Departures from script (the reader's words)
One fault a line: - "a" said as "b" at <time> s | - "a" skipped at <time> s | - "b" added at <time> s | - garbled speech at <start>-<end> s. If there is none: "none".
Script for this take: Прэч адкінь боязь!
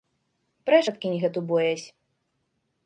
- "гэту" added at 1.2 s